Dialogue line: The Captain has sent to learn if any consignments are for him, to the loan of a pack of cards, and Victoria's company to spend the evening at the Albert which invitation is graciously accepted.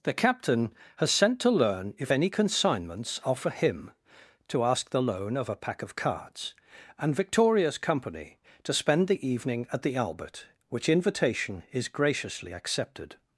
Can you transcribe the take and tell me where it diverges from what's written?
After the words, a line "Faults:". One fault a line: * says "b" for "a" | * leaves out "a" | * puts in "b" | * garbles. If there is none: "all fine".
The Captain has sent to learn if any consignments are for him, to ask the loan of a pack of cards, and Victoria's company to spend the evening at the Albert which invitation is graciously accepted.
Faults:
* puts in "ask"